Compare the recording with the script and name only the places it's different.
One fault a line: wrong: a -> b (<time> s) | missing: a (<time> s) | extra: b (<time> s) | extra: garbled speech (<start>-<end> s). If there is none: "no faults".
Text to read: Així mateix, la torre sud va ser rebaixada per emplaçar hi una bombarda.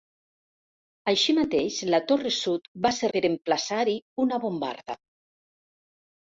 missing: rebaixada (3.1 s)